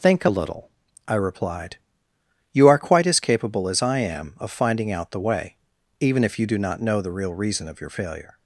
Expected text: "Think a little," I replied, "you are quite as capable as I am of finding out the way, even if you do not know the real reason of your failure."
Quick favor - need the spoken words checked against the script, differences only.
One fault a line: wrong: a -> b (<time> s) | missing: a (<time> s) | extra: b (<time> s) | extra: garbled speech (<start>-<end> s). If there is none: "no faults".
no faults